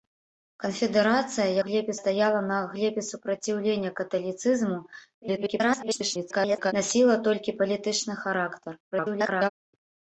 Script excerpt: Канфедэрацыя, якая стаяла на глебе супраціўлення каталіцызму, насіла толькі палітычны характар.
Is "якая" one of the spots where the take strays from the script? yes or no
yes